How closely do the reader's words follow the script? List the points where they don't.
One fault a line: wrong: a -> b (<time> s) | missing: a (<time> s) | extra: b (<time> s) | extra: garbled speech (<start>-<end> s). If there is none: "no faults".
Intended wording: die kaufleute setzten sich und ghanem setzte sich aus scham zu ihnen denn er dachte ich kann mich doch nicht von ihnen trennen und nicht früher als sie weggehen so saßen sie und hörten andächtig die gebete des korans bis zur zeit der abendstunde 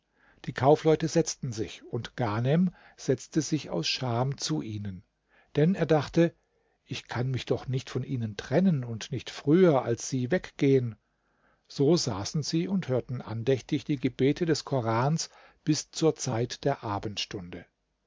no faults